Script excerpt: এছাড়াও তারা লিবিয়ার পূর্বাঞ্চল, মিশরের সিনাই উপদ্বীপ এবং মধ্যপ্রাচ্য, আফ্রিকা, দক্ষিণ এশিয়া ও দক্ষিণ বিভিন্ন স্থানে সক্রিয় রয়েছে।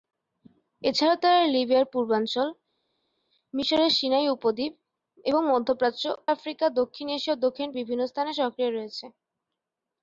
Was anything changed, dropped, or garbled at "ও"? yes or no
no